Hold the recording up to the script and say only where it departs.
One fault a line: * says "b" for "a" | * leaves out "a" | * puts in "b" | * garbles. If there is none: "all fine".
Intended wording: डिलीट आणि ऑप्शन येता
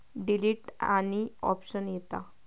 all fine